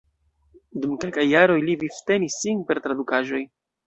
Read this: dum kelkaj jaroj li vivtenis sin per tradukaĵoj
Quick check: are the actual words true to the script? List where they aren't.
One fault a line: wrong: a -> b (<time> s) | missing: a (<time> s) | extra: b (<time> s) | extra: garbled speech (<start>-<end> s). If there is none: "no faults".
no faults